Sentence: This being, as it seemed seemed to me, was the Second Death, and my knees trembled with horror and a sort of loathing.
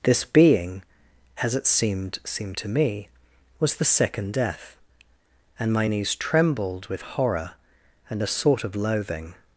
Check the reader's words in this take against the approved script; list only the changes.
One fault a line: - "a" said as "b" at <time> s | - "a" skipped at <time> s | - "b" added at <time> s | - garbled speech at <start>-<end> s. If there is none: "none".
none